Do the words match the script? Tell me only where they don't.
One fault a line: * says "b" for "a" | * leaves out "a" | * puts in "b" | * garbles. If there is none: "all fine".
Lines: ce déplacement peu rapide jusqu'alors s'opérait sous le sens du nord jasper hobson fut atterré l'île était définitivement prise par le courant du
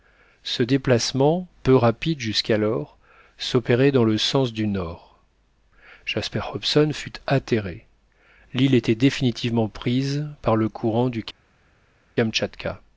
* says "dans" for "sous"